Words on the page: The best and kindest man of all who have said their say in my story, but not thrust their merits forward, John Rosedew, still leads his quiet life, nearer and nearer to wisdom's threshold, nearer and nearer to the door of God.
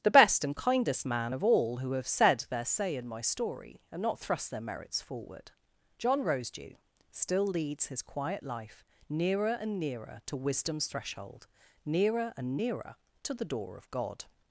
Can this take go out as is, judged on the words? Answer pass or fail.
fail